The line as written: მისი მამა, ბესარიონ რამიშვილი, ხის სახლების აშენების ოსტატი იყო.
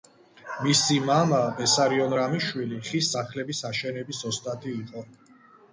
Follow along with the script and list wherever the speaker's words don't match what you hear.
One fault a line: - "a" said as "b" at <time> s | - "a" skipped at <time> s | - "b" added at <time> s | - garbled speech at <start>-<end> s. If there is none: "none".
none